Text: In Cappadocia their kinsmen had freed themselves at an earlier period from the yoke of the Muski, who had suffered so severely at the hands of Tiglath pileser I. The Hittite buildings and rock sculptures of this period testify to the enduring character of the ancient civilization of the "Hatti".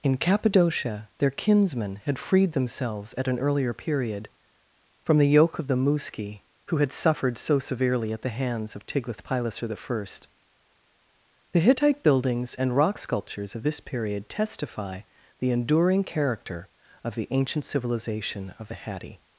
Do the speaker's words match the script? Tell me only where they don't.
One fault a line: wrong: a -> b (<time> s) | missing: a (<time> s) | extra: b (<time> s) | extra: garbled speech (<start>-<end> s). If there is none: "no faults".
missing: to (15.0 s)